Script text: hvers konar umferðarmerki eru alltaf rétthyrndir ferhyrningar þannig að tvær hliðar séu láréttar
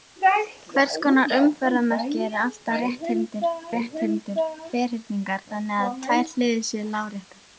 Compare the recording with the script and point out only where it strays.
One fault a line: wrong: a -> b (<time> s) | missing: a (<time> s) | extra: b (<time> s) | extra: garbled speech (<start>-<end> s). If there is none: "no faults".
extra: rétthyrndir (3.8 s)